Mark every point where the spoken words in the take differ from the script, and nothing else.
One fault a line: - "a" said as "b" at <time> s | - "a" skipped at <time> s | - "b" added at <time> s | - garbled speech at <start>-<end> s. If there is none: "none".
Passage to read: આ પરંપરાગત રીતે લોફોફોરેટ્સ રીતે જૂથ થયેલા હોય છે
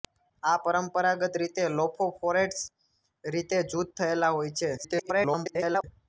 - garbled speech at 4.8-5.8 s